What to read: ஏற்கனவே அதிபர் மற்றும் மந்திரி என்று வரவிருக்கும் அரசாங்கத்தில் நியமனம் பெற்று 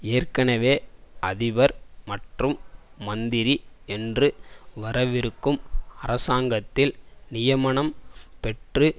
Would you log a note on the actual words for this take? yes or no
no